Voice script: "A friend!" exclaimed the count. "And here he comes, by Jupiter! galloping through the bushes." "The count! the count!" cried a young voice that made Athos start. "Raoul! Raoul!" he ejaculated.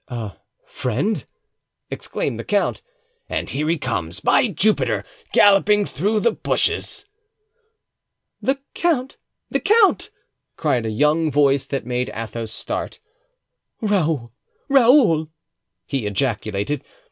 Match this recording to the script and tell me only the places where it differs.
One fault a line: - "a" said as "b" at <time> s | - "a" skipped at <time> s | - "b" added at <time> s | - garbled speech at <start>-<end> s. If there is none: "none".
none